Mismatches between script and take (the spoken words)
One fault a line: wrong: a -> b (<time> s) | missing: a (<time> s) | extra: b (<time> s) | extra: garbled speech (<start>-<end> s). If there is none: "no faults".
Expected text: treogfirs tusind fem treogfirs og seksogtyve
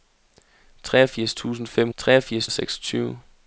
no faults